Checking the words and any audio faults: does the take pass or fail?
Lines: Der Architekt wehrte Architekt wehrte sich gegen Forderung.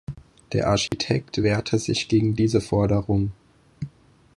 fail